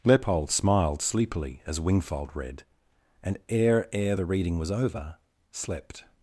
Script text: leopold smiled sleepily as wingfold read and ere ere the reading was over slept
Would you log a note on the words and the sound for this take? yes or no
no